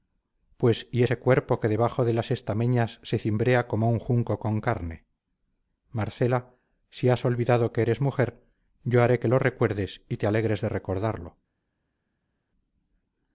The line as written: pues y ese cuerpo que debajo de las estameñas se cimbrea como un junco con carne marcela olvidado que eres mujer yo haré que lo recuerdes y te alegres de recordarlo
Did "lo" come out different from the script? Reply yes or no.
no